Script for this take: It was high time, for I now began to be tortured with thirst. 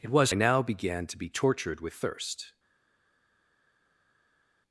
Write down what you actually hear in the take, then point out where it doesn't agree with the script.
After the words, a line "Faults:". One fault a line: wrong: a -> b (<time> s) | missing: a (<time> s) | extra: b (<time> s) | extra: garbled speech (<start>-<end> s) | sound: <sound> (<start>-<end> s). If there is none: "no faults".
It was I now began to be tortured with thirst.
Faults:
missing: high time for (0.3 s)